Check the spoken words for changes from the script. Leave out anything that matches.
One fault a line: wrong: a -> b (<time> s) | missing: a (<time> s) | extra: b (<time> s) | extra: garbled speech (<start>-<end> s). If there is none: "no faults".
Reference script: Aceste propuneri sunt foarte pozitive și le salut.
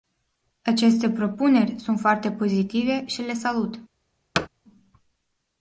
no faults